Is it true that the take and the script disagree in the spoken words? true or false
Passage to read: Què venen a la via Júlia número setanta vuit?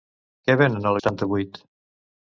true